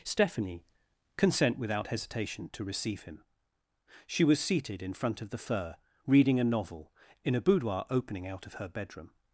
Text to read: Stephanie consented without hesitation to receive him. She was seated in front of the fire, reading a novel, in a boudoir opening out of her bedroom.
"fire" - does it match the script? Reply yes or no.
no